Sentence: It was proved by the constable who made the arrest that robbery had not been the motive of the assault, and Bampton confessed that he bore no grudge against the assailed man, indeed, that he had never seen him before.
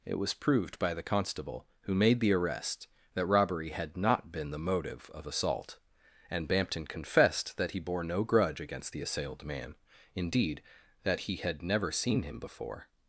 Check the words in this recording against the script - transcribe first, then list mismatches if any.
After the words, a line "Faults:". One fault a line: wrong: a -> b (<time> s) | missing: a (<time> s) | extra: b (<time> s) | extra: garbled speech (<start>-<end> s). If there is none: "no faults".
It was proved by the constable who made the arrest that robbery had not been the motive of assault, and Bampton confessed that he bore no grudge against the assailed man, indeed, that he had never seen him before.
Faults:
missing: the (5.3 s)